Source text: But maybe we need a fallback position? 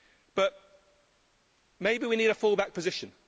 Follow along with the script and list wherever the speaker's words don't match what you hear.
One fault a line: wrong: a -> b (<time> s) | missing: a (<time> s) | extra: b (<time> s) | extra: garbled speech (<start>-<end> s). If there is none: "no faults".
no faults